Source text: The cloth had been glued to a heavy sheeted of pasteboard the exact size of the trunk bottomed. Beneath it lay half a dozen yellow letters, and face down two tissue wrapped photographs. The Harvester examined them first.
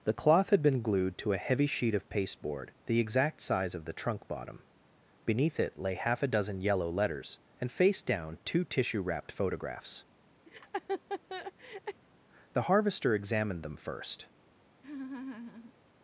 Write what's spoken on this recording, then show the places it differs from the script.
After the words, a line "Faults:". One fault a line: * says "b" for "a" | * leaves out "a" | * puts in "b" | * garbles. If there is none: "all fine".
The cloth had been glued to a heavy sheet of pasteboard the exact size of the trunk bottom. Beneath it lay half a dozen yellow letters, and face down two tissue wrapped photographs. The Harvester examined them first.
Faults:
* says "sheet" for "sheeted"
* says "bottom" for "bottomed"